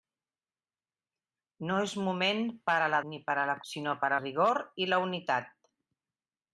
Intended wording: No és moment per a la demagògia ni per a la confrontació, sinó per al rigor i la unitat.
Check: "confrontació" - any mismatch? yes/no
yes